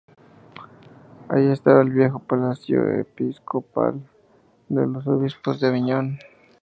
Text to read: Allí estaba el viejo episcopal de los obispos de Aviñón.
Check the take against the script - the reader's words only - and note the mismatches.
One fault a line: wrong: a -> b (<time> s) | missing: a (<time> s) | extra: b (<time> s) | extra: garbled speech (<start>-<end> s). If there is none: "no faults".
extra: palacio (2.2 s)